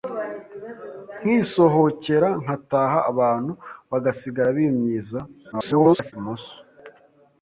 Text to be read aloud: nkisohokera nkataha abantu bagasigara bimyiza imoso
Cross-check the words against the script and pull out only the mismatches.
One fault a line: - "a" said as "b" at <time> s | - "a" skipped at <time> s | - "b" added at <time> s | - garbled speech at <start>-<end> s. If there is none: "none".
- garbled speech at 5.5-6.1 s